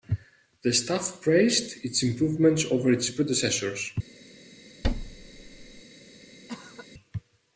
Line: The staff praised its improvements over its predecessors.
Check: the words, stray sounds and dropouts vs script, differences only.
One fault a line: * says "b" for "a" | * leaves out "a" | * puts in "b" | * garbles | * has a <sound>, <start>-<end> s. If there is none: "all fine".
* has a thud, 4.8-5.8 s
* has a cough, 6.5-6.9 s